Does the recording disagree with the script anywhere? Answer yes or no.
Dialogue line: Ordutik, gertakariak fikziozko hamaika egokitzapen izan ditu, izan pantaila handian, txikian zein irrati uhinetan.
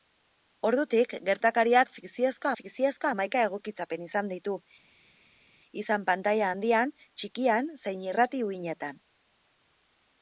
yes